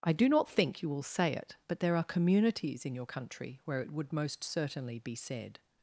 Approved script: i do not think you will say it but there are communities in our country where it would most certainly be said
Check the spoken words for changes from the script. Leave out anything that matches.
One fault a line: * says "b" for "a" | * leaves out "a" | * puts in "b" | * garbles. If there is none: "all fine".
* says "your" for "our"